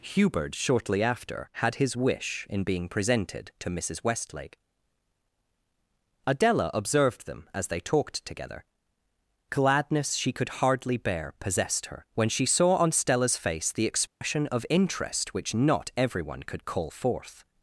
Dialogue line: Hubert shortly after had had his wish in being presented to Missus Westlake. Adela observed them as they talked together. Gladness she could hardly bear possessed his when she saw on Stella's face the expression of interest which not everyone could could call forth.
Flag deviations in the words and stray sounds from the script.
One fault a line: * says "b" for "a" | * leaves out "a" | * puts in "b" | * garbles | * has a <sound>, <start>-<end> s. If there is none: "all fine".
* leaves out "had"
* says "her" for "his"
* has a dropout, 14.1-14.2 s
* leaves out "could"